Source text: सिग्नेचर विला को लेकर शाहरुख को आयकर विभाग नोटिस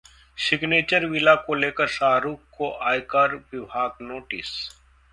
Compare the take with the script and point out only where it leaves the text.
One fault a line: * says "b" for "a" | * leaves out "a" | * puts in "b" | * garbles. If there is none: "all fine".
all fine